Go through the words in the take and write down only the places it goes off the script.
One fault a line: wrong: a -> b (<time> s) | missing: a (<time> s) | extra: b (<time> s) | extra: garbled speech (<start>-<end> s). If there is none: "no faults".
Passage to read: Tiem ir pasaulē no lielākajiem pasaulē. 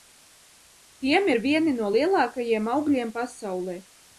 wrong: pasaulē -> vieni (1.5 s)
extra: augļiem (2.8 s)